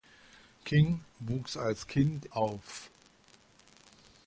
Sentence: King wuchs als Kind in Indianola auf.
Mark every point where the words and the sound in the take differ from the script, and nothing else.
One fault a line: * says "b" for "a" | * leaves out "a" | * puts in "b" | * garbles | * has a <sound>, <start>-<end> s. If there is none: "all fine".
* leaves out "in Indianola"